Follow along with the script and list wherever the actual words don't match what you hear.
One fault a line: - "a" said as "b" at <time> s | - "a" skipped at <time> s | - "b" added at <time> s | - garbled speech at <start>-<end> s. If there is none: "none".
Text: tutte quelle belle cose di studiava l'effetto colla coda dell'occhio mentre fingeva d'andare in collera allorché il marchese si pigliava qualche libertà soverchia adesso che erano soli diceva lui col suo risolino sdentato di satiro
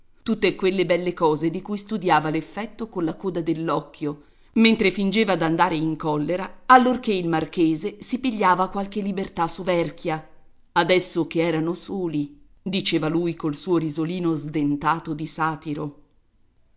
- "cui" added at 1.6 s